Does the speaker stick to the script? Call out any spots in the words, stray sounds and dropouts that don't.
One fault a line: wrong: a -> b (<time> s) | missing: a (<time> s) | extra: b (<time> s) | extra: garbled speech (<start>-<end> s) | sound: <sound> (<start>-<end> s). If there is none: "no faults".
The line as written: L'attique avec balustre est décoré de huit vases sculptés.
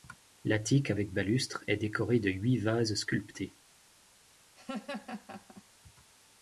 sound: laugh (4.6-5.6 s)